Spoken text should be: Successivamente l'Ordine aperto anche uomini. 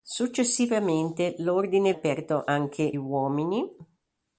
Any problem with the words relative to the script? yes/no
no